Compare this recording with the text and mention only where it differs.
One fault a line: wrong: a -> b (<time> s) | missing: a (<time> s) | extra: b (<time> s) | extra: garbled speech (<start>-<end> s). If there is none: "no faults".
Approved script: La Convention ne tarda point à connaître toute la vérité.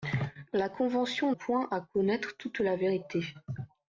missing: ne tarda (1.3 s)